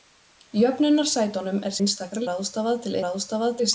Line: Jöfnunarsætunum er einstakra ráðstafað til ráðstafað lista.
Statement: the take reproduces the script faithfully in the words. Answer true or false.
true